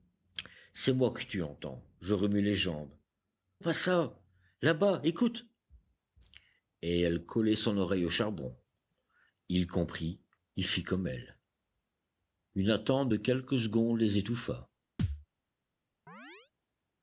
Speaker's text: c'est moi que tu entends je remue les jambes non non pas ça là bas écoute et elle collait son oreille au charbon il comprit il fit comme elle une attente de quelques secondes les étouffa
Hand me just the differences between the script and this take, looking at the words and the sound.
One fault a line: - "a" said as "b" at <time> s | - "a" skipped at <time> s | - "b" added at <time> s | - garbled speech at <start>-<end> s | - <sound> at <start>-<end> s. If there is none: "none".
- "non non" skipped at 3.0 s
- thud at 15.0-15.3 s
- chirp at 16.1-16.5 s